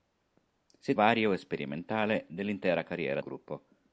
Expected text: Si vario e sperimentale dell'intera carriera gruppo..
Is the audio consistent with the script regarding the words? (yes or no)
yes